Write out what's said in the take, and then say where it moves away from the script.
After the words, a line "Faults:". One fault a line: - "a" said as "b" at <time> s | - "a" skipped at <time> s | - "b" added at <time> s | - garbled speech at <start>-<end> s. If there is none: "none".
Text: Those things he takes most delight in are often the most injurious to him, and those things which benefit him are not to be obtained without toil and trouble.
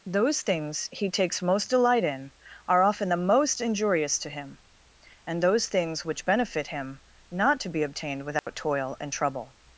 Those things he takes most delight in are often the most injurious to him, and those things which benefit him not to be obtained without toil and trouble.
Faults:
- "are" skipped at 7.0 s